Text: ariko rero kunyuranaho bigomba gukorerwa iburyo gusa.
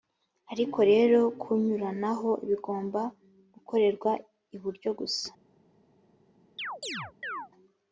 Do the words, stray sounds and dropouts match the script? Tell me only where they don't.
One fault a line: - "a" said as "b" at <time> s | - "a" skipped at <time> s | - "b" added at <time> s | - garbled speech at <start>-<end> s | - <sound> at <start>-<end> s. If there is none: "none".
- chirp at 6.6-7.5 s